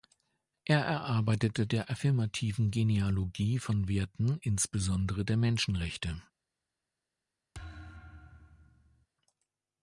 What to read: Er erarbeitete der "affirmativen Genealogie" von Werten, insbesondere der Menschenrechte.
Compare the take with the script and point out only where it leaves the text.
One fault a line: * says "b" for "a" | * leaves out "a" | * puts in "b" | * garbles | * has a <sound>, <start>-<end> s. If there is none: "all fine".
* has a thud, 7.5-9.1 s